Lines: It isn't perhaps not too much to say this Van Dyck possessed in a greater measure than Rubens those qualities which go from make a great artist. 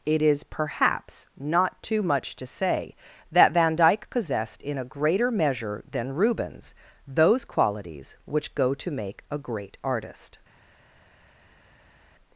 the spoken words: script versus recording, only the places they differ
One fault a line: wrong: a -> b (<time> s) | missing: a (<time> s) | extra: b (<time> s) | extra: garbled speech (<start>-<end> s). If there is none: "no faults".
wrong: isn't -> is (0.2 s)
wrong: this -> that (3.3 s)
wrong: from -> to (8.7 s)